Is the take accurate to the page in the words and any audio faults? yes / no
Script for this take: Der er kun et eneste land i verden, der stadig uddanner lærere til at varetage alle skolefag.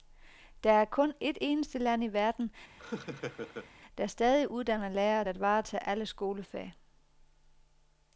no